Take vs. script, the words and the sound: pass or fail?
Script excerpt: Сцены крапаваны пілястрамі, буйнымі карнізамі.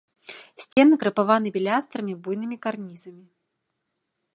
fail